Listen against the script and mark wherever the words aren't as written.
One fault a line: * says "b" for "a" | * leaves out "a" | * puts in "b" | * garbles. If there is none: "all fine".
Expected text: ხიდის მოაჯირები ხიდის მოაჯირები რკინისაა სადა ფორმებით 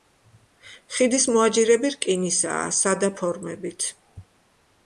* leaves out "ხიდის მოაჯირები"